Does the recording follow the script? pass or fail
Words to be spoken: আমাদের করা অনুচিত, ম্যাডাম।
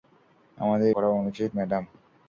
pass